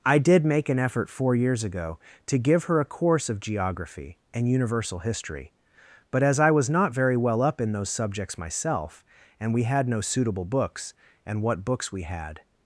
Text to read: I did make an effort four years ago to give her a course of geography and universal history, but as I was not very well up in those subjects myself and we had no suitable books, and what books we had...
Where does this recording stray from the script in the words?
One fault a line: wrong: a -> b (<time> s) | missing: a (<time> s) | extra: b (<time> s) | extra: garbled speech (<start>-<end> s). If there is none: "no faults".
no faults